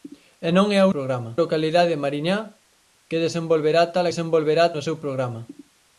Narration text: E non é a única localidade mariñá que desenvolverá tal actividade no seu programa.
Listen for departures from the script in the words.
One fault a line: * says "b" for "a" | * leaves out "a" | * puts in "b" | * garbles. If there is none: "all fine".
* says "programa" for "única"
* says "desenvolverá" for "actividade"